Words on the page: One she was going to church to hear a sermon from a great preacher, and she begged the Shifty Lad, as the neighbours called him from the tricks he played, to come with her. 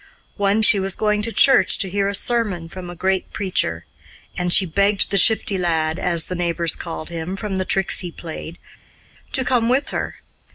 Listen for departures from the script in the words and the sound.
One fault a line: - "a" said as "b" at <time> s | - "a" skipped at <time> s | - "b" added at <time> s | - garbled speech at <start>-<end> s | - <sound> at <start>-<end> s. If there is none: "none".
none